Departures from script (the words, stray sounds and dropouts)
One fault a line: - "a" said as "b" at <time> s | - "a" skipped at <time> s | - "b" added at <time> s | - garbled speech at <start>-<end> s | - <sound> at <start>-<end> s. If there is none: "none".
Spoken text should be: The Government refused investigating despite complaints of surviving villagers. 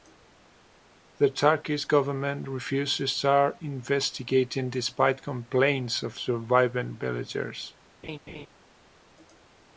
- "Turkish" added at 1.3 s
- "to start" added at 3.0 s
- laugh at 8.0-8.5 s